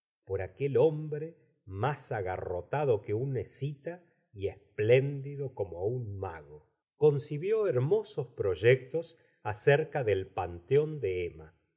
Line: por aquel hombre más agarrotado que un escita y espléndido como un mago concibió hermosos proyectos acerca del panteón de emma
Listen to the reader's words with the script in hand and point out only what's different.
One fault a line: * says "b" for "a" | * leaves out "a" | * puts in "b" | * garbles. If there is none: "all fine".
all fine